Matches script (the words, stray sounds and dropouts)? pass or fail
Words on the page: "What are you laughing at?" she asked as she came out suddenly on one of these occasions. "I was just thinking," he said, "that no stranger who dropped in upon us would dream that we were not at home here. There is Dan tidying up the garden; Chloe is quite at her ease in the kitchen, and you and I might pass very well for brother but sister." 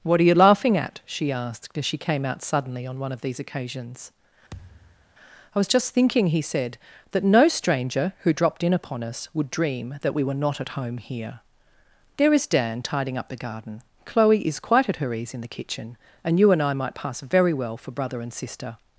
fail